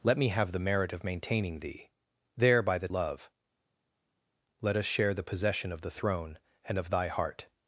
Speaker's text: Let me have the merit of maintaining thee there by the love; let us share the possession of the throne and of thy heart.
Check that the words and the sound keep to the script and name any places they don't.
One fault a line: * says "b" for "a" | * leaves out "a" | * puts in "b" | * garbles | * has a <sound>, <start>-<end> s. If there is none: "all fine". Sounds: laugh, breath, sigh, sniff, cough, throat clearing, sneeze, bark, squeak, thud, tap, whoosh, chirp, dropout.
all fine